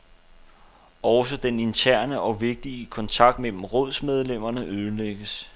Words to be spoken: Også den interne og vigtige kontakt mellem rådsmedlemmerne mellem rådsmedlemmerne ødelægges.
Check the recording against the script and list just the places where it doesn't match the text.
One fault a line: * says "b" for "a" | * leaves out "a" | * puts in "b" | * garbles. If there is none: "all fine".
* leaves out "mellem rådsmedlemmerne"